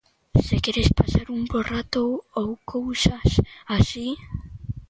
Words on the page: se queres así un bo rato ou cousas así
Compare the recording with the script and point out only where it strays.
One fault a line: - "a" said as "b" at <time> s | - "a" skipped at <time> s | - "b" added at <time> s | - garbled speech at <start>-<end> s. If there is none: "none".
- "así" said as "pasar" at 1.0 s